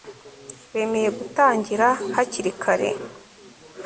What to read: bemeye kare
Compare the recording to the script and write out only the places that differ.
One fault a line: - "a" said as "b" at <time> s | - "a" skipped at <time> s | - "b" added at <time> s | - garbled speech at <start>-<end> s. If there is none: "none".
- "gutangira hakiri" added at 1.2 s